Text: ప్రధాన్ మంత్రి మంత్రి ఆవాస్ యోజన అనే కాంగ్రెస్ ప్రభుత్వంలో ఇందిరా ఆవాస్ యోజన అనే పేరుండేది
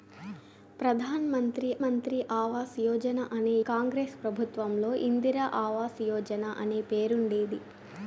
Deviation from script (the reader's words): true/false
false